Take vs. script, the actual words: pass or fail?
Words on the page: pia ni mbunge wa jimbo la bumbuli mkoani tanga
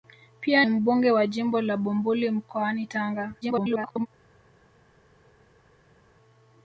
fail